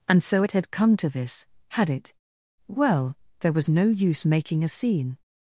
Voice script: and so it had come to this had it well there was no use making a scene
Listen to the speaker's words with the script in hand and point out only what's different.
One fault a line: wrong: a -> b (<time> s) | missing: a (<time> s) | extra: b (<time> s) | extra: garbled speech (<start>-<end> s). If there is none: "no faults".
no faults